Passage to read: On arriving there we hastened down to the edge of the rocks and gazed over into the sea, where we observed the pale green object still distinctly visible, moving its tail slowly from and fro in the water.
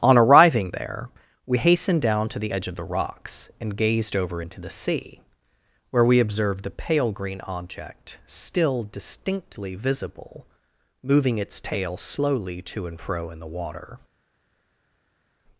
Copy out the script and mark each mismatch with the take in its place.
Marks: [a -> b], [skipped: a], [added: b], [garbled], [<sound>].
On arriving there we hastened down to the edge of the rocks and gazed over into the sea, where we observed the pale green object still distinctly visible, moving its tail slowly [from -> to] and fro in the water.